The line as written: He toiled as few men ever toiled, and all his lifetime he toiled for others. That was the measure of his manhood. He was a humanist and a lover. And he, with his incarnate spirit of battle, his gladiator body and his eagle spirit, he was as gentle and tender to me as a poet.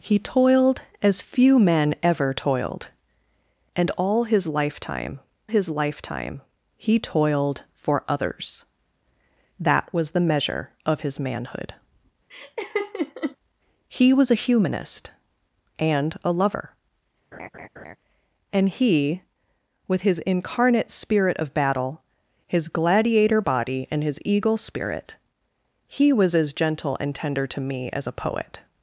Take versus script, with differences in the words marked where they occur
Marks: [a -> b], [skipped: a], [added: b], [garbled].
He toiled as few men ever toiled, and all his lifetime [added: his lifetime] he toiled for others. That was the measure of his manhood. He was a humanist and a lover. And he, with his incarnate spirit of battle, his gladiator body and his eagle spirit, he was as gentle and tender to me as a poet.